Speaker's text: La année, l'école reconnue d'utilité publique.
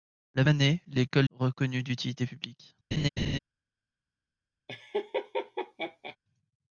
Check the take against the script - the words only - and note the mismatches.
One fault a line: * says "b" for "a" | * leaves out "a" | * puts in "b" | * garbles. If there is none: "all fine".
all fine